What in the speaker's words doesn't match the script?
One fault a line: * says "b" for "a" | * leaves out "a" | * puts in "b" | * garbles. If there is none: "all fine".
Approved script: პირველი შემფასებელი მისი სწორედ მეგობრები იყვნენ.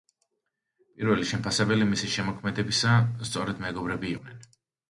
* puts in "შემოქმედებისა"